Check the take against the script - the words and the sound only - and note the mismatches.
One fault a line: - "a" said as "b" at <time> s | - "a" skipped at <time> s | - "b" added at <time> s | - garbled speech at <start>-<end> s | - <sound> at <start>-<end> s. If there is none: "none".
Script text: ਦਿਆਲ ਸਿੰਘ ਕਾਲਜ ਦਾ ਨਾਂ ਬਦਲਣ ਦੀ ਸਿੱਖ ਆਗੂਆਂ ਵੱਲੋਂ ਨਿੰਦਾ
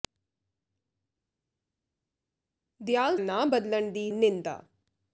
- "ਸਿੰਘ ਕਾਲਜ ਦਾ" skipped at 3.2 s
- "ਸਿੱਖ ਆਗੂਆਂ ਵੱਲੋਂ" skipped at 4.1 s